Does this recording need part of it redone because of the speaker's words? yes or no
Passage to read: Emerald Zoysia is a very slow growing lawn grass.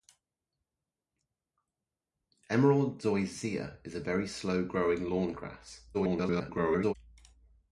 yes